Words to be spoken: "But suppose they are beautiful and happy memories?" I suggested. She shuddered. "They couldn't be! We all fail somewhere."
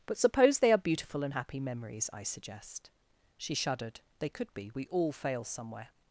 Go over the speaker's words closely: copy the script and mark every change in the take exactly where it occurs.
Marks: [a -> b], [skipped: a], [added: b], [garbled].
"But suppose they are beautiful and happy memories?" I [suggested. -> suggest] She shuddered. "They [couldn't -> could] be! We all fail somewhere."